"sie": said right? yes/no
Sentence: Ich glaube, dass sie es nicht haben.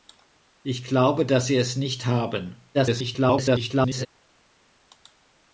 yes